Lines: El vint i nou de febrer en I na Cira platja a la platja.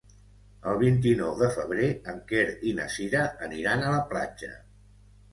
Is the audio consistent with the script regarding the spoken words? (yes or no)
no